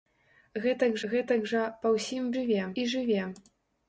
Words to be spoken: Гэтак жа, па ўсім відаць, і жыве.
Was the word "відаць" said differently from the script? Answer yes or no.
yes